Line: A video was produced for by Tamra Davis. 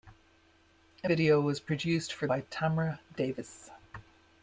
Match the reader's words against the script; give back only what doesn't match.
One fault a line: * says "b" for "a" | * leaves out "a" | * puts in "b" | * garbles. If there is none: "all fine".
all fine